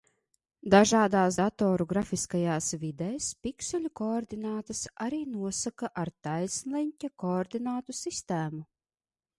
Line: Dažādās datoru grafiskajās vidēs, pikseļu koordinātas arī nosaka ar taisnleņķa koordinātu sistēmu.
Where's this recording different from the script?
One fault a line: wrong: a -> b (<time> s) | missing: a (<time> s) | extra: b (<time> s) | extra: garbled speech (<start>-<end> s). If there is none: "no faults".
no faults